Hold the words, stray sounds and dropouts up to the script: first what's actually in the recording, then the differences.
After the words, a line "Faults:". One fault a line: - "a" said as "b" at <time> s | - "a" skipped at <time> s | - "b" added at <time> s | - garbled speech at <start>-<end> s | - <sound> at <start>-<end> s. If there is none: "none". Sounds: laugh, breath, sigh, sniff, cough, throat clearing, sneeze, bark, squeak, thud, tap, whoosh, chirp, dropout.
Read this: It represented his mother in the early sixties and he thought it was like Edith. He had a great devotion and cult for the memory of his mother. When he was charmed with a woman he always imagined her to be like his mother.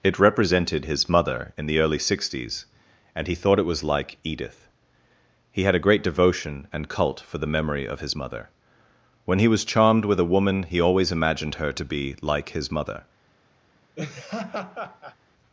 It represented his mother in the early sixties and he thought it was like Edith. He had a great devotion and cult for the memory of his mother. When he was charmed with a woman he always imagined her to be like his mother.
Faults:
- laugh at 13.9-15.2 s